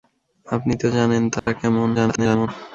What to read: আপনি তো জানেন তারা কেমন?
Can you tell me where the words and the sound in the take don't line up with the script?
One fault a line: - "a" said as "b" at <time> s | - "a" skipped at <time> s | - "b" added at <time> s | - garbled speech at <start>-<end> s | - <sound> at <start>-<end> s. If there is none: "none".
- dropout at 1.4-1.5 s
- garbled speech at 1.9-2.5 s